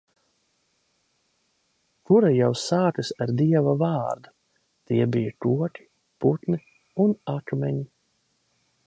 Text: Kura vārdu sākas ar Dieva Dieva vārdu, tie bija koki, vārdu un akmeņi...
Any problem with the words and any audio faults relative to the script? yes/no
yes